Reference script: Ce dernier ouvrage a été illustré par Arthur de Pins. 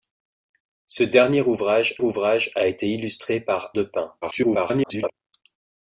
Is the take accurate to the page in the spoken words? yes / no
no